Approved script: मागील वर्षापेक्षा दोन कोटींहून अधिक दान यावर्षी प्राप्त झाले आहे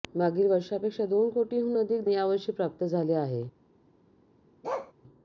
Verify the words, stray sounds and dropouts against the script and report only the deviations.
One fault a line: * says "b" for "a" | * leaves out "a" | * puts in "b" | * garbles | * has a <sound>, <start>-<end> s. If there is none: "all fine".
* leaves out "दान"
* has a bark, 4.6-4.9 s